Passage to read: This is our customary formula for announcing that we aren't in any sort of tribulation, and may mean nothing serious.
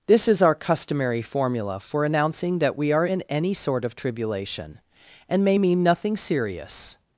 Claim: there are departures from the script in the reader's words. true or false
true